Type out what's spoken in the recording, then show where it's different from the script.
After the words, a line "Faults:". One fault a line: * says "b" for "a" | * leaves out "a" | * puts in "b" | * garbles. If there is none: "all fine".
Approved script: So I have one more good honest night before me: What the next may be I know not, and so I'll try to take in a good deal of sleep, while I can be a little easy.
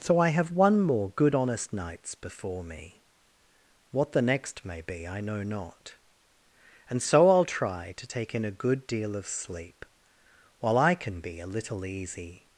So I have one more good honest nights before me: What the next may be I know not, and so I'll try to take in a good deal of sleep, while I can be a little easy.
Faults:
* says "nights" for "night"